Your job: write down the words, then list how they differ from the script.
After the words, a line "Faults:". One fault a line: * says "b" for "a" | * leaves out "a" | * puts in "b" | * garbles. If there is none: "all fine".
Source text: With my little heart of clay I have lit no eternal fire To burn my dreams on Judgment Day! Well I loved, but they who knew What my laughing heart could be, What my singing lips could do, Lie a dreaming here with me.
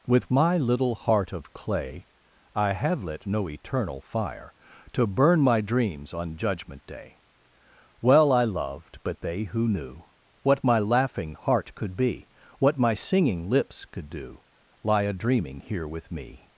With my little heart of clay I have lit no eternal fire To burn my dreams on Judgment Day! Well I loved, but they who knew What my laughing heart could be, What my singing lips could do, Lie a dreaming here with me.
Faults:
all fine